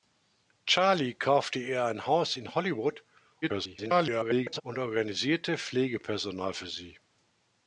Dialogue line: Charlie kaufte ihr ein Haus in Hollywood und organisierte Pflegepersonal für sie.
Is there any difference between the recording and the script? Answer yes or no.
yes